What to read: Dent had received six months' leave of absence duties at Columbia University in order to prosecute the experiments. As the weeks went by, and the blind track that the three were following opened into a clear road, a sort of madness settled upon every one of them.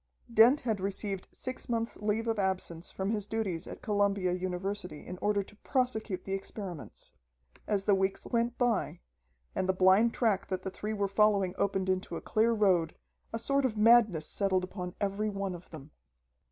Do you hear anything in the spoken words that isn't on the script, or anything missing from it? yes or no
yes